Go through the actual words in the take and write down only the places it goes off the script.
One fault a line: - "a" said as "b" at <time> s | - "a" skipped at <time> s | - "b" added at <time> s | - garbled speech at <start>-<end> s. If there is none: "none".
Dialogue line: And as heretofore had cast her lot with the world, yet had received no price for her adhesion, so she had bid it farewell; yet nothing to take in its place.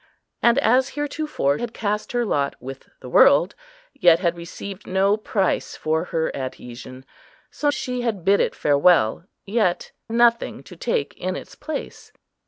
none